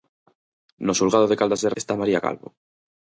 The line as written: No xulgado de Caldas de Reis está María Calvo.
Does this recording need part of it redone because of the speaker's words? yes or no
yes